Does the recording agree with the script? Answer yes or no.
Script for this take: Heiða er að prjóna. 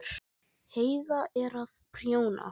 yes